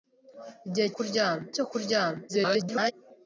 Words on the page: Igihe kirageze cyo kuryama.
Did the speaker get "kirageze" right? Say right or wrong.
wrong